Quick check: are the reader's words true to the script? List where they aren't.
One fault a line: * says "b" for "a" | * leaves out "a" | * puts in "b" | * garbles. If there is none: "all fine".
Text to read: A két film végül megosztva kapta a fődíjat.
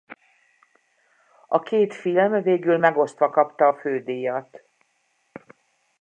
all fine